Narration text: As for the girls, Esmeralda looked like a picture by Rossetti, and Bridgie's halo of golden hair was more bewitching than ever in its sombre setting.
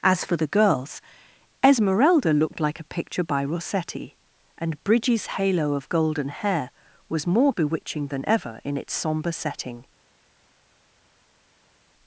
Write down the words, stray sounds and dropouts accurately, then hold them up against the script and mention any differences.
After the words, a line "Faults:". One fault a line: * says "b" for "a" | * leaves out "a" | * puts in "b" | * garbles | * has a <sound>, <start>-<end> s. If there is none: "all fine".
As for the girls, Esmeralda looked like a picture by Rossetti, and Bridgie's halo of golden hair was more bewitching than ever in its sombre setting.
Faults:
all fine